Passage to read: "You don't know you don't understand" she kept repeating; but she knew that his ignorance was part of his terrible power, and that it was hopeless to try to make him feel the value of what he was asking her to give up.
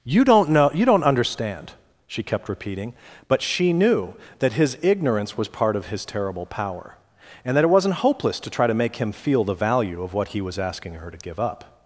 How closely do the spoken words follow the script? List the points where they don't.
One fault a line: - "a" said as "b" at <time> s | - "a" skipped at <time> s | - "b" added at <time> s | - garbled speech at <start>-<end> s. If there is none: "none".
- "was" said as "wasn't" at 7.7 s